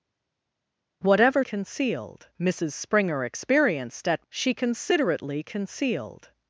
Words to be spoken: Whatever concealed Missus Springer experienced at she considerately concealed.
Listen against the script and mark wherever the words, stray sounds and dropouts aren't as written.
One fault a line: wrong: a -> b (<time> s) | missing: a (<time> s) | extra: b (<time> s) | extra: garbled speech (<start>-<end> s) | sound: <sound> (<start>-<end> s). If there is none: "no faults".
no faults